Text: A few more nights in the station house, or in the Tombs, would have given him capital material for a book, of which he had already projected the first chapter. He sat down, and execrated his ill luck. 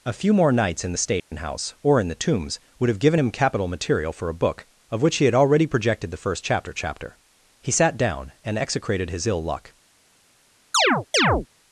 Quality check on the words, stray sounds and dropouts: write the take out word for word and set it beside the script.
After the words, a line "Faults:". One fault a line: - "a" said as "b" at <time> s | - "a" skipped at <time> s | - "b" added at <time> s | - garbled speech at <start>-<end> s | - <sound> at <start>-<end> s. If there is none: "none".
A few more nights in the station house, or in the Tombs, would have given him capital material for a book, of which he had already projected the first chapter chapter. He sat down, and execrated his ill luck.
Faults:
- dropout at 1.2-1.3 s
- "chapter" added at 6.7 s
- chirp at 10.7-11.5 s